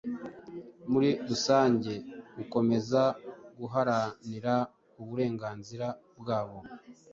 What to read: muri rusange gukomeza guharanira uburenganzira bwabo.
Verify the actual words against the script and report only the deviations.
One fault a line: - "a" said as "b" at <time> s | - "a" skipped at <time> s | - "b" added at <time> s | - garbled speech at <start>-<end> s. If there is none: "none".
none